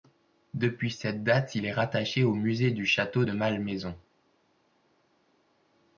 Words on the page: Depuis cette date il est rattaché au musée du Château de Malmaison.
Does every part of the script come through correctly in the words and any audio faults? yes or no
yes